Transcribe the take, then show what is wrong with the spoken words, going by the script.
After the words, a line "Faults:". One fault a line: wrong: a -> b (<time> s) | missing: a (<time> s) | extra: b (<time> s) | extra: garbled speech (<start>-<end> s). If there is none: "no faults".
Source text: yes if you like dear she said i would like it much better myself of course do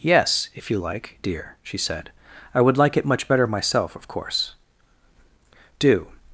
yes if you like dear she said i would like it much better myself of course do
Faults:
no faults